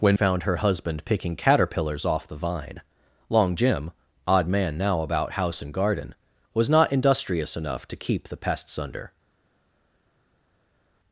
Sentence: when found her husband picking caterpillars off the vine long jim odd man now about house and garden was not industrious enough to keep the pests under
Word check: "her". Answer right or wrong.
right